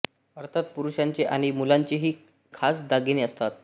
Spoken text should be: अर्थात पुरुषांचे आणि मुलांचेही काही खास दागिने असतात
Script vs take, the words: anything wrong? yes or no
yes